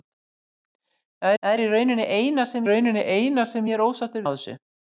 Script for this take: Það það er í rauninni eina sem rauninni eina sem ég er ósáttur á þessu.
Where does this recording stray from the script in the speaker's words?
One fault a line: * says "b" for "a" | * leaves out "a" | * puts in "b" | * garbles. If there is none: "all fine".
all fine